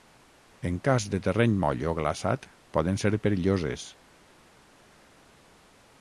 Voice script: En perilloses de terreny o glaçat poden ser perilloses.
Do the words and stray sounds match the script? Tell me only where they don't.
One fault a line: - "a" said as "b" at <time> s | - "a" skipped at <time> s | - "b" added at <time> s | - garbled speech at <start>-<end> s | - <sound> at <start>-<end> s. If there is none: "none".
- "perilloses" said as "cas" at 0.9 s
- "moll" added at 1.6 s